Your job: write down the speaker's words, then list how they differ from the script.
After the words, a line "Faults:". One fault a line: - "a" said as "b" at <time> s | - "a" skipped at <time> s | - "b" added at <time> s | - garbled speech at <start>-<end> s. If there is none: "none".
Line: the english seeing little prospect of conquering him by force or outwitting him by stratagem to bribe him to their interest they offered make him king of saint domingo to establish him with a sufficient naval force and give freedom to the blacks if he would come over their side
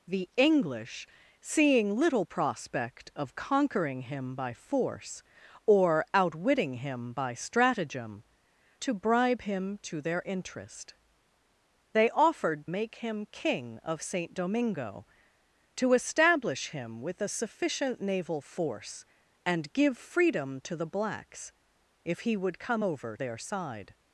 the english seeing little prospect of conquering him by force or outwitting him by stratagem to bribe him to their interest they offered make him king of saint domingo to establish him with a sufficient naval force and give freedom to the blacks if he would come over their side
Faults:
none